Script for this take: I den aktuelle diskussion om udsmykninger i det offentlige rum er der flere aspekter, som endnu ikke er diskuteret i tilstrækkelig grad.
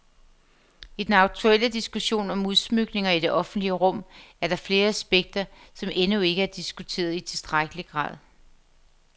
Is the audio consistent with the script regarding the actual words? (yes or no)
yes